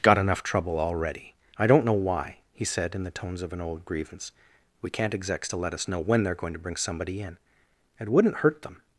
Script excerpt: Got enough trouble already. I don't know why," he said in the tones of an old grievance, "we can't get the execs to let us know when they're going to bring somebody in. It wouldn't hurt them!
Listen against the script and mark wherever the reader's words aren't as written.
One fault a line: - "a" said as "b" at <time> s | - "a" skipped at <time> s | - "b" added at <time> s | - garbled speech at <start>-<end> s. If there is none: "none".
- "get the" skipped at 5.1 s